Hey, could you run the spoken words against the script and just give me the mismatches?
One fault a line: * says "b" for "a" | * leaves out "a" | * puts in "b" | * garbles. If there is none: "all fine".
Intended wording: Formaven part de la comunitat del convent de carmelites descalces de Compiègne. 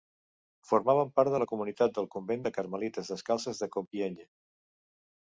all fine